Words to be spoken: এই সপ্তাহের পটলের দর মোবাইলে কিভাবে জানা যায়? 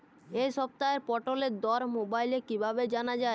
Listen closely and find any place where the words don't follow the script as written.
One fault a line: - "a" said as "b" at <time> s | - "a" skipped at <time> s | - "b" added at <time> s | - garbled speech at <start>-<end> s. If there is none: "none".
none